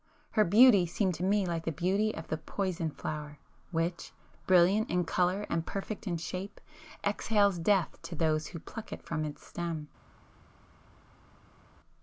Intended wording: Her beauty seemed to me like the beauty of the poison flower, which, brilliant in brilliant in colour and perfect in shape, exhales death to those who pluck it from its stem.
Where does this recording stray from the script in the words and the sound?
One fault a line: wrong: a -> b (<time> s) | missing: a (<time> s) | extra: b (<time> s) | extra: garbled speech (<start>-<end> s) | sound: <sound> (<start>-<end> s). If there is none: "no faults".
missing: brilliant in (5.0 s)